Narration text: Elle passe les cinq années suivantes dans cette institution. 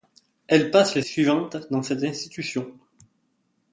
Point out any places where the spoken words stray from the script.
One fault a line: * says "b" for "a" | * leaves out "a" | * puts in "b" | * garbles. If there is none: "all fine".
* leaves out "cinq années"